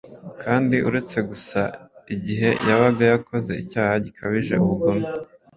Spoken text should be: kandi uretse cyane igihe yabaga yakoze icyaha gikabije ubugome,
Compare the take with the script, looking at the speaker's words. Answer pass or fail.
fail